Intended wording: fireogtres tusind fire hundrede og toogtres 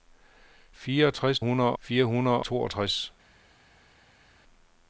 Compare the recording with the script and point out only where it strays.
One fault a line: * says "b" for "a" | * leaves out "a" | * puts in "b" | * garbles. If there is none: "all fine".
* says "hundrede" for "tusind"
* leaves out "og"